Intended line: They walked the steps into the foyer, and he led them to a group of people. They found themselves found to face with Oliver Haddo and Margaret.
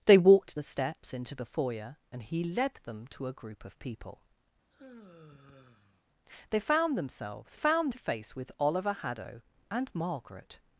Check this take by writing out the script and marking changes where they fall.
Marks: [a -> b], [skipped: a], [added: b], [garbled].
They walked the steps into the foyer, and he led them to a group of people. They found themselves found to face with Oliver Haddo and Margaret.